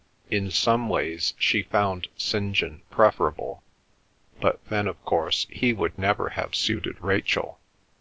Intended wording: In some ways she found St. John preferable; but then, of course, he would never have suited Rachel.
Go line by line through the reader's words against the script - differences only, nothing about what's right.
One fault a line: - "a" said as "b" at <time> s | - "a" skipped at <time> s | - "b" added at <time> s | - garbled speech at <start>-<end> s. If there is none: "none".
none